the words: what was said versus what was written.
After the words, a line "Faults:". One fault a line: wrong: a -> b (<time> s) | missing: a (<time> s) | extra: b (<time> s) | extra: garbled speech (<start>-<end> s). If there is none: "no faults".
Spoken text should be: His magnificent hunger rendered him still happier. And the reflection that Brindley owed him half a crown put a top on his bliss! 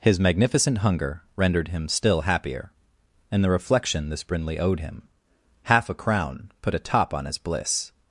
His magnificent hunger rendered him still happier. And the reflection this Brindley owed him half a crown put a top on his bliss!
Faults:
wrong: that -> this (4.1 s)